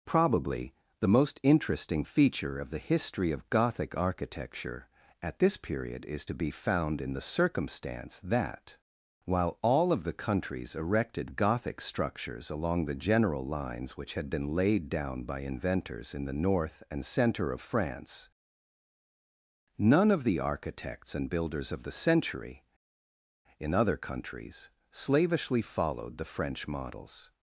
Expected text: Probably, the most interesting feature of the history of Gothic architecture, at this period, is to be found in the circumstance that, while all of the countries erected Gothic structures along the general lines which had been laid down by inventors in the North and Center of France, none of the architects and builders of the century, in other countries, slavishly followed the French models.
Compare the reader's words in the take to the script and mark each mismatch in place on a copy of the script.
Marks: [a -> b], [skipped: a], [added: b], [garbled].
Probably, the most interesting feature of the history of Gothic architecture, at this period, is to be found in the circumstance that, while all of the countries erected Gothic structures along the general lines which had been laid down by inventors in the North and Center of France, none of the architects and builders of the century, in other countries, slavishly followed the French models.